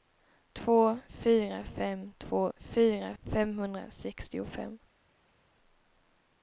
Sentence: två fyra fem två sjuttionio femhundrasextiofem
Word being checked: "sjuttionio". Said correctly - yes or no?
no